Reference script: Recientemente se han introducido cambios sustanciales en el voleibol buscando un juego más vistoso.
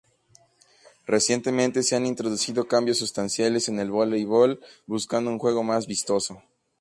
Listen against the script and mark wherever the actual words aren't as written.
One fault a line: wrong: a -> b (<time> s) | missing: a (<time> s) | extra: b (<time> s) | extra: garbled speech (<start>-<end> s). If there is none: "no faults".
no faults